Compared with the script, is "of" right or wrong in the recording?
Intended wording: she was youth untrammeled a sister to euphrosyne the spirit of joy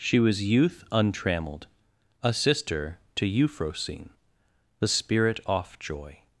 wrong